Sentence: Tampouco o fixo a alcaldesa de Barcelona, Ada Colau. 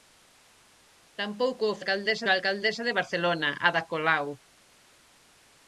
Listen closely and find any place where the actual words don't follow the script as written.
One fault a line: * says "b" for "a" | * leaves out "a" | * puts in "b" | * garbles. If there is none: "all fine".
* says "alcaldesa" for "fixo"